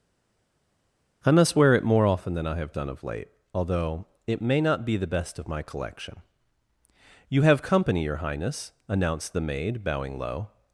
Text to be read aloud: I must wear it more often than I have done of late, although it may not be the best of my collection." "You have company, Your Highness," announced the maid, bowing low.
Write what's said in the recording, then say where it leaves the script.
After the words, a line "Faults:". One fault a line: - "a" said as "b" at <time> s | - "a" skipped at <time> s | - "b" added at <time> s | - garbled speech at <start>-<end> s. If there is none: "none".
I must wear it more often than I have done of late, although it may not be the best of my collection." "You have company, Your Highness," announced the maid, bowing low.
Faults:
none